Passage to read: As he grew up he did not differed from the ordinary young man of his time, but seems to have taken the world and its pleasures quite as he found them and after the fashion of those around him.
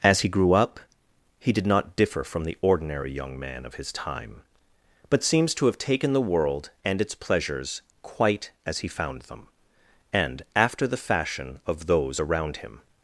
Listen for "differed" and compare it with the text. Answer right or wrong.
wrong